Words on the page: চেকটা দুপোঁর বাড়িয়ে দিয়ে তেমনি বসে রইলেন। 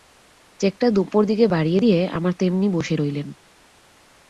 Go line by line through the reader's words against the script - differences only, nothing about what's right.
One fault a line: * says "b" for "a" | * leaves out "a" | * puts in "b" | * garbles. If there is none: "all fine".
* puts in "দিকে"
* puts in "আমার"